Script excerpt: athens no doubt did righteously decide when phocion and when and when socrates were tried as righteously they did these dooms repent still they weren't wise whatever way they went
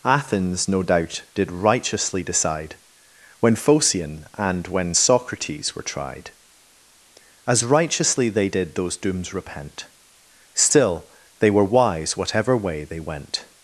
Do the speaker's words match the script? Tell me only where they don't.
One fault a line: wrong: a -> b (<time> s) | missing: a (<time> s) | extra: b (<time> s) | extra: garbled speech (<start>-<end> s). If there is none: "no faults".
missing: and when (5.0 s)
wrong: these -> those (8.7 s)
wrong: weren't -> were (11.5 s)